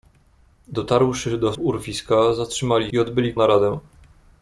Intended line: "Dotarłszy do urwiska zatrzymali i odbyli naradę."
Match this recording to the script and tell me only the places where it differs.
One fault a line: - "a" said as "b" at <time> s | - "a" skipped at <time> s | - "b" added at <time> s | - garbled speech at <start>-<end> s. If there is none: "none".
none